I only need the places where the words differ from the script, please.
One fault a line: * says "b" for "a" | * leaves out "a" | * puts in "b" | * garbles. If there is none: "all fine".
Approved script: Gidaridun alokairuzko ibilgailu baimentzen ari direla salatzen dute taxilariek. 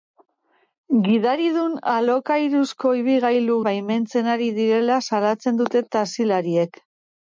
all fine